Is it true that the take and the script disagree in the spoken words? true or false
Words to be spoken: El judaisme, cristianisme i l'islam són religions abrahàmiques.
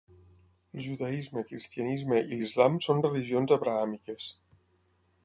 false